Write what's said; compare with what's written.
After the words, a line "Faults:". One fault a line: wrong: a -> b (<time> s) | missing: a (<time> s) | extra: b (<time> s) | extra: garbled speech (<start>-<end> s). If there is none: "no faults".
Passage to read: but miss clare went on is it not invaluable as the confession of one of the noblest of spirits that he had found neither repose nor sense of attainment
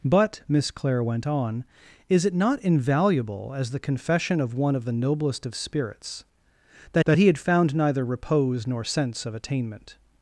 but miss clare went on is it not invaluable as the confession of one of the noblest of spirits that that he had found neither repose nor sense of attainment
Faults:
extra: that (7.0 s)